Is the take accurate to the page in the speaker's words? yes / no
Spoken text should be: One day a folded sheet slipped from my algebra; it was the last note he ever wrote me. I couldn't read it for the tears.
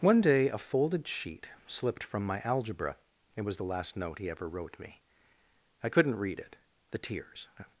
no